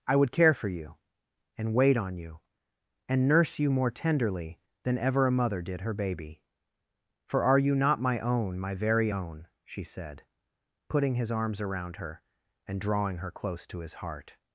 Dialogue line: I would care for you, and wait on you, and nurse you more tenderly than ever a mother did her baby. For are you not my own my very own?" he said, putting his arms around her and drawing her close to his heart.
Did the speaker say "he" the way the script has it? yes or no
no